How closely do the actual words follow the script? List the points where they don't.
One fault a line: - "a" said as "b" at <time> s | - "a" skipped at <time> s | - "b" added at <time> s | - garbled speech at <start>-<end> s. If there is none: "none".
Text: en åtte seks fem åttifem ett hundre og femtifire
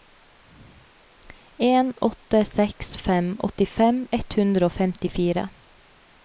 none